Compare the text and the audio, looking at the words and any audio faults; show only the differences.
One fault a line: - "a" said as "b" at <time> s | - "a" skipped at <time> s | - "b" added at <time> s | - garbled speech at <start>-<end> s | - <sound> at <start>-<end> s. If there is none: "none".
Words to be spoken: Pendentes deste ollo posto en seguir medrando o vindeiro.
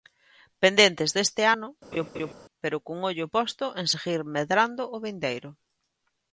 - "ano pero cun" added at 1.5 s
- laugh at 1.9-2.3 s